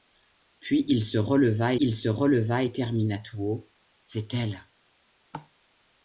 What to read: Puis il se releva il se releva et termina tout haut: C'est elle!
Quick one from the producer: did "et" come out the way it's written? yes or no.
yes